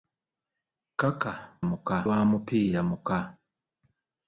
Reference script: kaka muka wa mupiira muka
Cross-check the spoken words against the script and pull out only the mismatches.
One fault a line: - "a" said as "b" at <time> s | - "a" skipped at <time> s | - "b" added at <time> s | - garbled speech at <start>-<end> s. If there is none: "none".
none